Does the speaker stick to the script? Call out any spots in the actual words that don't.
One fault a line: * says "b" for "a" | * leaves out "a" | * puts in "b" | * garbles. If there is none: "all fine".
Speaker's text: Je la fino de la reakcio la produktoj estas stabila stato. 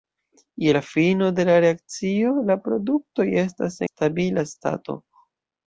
all fine